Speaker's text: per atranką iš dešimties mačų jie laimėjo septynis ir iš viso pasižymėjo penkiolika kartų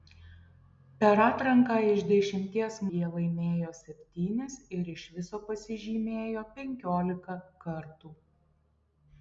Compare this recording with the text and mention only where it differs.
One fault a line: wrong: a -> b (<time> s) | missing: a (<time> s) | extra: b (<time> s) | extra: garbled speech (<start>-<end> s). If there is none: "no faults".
missing: mačų (2.8 s)